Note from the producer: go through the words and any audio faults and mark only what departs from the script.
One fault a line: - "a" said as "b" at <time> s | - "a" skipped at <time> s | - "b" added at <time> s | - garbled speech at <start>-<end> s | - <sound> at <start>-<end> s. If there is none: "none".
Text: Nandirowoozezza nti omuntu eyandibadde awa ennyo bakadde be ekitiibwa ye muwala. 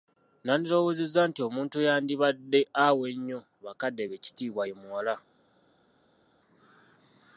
none